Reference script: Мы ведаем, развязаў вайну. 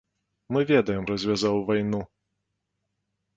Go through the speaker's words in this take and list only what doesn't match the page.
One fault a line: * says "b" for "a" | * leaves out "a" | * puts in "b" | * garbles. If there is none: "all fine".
all fine